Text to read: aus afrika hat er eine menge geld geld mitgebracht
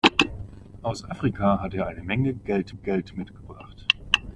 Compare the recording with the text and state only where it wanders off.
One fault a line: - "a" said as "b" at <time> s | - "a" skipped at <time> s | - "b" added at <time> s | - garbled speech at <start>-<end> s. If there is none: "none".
none